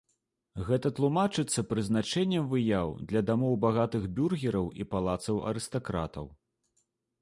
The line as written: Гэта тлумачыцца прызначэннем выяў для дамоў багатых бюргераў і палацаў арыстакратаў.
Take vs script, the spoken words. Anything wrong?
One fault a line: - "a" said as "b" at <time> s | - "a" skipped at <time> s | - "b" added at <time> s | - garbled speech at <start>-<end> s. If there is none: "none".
none